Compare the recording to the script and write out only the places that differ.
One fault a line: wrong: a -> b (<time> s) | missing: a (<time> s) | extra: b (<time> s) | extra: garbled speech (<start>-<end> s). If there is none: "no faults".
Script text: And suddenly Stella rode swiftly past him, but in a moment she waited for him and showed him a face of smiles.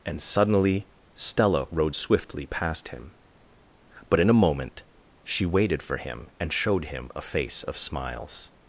no faults